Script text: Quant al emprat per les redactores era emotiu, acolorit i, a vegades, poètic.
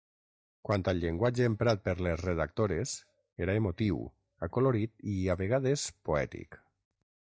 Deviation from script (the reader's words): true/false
true